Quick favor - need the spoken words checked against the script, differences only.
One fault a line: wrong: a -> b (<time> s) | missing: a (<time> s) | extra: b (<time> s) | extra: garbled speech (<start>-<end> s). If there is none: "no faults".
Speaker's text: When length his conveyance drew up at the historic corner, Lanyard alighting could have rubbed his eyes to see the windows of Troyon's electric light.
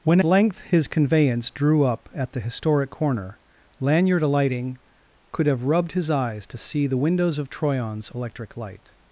no faults